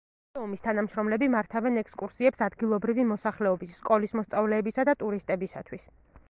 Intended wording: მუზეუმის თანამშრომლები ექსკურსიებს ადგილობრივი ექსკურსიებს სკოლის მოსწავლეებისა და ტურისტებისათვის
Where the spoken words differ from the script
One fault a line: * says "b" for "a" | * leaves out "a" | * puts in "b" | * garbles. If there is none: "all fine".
* puts in "მართავენ"
* says "მოსახლეობის" for "ექსკურსიებს"